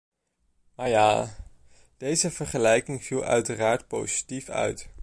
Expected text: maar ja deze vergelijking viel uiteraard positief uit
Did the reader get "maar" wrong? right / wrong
right